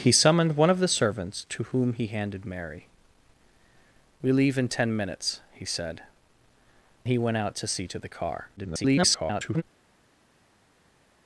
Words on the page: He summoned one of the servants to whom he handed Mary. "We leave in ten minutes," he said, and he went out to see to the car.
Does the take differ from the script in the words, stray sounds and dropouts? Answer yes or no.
yes